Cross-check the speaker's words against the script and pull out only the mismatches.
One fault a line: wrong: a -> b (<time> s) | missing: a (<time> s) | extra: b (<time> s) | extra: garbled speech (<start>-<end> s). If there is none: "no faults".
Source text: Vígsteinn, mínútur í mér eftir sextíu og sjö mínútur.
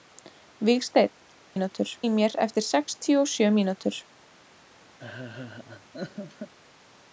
no faults